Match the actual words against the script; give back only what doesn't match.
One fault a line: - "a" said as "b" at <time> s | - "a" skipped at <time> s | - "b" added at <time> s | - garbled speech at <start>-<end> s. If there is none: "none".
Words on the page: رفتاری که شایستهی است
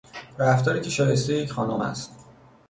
- "یک خانم" added at 1.4 s